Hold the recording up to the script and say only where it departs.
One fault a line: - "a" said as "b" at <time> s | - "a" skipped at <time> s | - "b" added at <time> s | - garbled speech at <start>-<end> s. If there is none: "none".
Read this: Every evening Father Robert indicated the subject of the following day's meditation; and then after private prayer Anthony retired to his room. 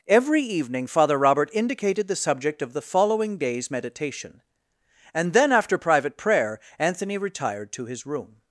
none